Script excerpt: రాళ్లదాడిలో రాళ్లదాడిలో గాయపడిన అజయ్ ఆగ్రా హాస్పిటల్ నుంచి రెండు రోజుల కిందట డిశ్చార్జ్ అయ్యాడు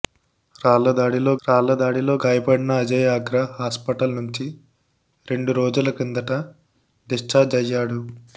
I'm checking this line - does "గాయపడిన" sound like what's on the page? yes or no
yes